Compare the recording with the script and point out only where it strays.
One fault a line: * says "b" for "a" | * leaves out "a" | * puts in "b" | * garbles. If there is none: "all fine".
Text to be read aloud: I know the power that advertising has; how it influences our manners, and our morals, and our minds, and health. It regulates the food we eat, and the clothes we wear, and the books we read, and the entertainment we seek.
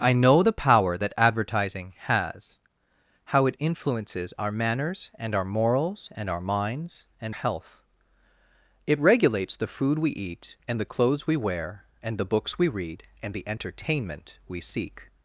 all fine